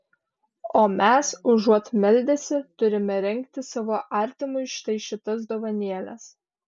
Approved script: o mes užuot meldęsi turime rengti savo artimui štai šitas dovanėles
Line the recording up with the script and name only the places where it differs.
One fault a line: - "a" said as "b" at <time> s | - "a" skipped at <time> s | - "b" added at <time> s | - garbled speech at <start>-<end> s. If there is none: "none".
none